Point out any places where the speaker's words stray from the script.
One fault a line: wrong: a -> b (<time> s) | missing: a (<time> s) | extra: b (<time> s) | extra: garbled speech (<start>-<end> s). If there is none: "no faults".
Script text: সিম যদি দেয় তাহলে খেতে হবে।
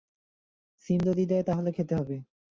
no faults